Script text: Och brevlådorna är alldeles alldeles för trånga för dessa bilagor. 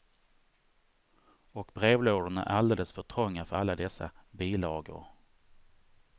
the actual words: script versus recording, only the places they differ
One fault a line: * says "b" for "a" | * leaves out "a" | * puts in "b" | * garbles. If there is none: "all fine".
* leaves out "alldeles"
* puts in "alla"